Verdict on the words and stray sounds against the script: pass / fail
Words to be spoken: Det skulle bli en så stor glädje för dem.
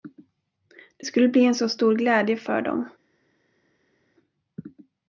pass